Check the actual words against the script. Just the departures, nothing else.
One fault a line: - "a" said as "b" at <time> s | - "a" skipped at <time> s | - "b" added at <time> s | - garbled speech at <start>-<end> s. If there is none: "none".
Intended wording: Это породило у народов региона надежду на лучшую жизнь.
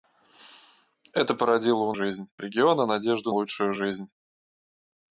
- "народов" said as "жизнь" at 1.9 s
- "на" skipped at 3.3 s